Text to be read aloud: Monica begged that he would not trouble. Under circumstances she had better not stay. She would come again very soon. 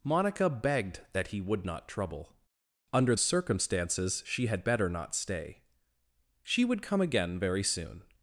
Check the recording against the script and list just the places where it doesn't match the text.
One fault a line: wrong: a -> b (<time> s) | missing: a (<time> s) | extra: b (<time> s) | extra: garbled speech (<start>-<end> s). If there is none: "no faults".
no faults